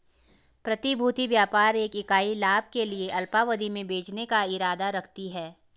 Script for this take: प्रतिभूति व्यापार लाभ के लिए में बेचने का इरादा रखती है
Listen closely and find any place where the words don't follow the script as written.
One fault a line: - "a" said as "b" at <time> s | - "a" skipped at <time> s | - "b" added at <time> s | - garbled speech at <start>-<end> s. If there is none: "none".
- "एक इकाई" added at 1.8 s
- "अल्पावधि" added at 3.1 s